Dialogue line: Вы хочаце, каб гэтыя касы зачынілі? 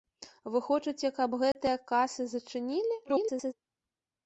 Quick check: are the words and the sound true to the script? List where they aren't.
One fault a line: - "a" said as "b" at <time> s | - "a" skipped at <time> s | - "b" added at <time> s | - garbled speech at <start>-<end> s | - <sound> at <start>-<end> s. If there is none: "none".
- dropout at 1.5-1.5 s
- garbled speech at 3.0-3.5 s